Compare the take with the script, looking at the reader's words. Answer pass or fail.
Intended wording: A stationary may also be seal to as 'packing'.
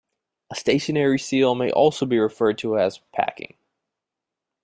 fail